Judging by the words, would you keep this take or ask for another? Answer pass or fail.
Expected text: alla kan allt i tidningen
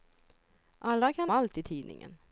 pass